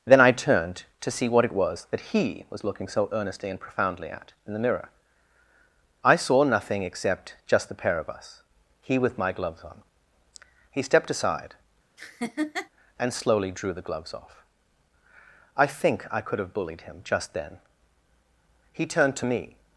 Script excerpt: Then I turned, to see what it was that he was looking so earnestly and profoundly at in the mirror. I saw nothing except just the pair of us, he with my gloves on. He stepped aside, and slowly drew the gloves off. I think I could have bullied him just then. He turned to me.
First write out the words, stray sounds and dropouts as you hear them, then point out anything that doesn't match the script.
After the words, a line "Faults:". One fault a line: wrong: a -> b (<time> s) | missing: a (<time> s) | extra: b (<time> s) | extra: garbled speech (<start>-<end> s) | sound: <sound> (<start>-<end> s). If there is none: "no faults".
Then I turned, to see what it was that he was looking so earnestly and profoundly at in the mirror. I saw nothing except just the pair of us, he with my gloves on. He stepped aside, and slowly drew the gloves off. I think I could have bullied him just then. He turned to me.
Faults:
sound: laugh (12.0-12.7 s)